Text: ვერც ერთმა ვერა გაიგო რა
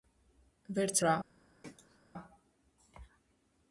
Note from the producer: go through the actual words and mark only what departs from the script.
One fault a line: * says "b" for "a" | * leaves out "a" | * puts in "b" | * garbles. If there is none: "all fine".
* leaves out "ერთმა ვერა გაიგო"